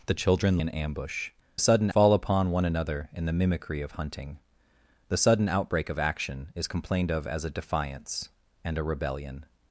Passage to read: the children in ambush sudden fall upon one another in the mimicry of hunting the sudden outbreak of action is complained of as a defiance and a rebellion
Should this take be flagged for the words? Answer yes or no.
no